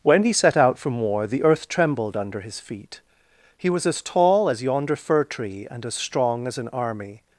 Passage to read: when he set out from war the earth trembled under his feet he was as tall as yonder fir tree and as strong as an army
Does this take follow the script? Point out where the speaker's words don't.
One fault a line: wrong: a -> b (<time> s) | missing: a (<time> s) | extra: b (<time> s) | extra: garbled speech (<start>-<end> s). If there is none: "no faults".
no faults